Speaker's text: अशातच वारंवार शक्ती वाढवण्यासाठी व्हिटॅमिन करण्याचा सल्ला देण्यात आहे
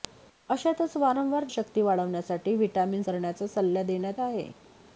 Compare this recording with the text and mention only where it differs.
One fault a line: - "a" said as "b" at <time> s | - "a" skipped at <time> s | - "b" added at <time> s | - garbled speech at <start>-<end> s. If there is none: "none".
none